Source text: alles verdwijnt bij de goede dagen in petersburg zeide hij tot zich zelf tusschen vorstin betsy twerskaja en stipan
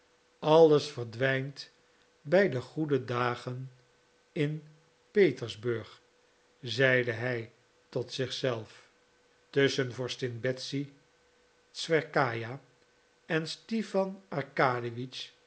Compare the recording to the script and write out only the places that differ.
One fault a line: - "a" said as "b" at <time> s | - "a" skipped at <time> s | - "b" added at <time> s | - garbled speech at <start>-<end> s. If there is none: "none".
none